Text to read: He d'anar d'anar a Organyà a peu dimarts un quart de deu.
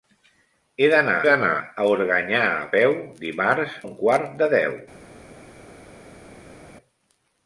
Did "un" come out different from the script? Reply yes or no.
no